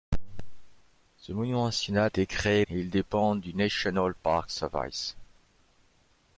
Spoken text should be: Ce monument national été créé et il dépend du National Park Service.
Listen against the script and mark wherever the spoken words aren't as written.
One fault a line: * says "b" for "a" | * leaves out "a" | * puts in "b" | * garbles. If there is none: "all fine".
all fine